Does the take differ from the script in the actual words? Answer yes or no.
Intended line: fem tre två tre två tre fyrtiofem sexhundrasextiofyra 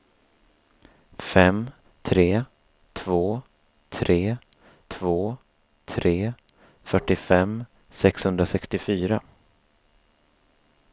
no